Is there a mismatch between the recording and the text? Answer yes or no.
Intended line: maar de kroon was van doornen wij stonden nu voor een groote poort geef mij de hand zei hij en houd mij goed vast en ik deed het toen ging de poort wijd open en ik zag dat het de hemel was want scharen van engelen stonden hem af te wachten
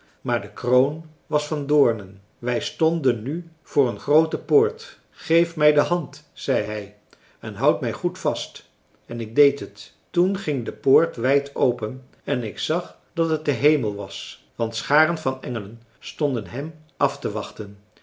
no